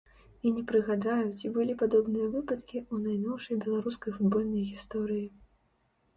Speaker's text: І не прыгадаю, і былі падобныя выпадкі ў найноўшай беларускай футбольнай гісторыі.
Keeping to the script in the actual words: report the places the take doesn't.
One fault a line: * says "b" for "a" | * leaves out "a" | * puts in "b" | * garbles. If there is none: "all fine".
* says "ці" for "і"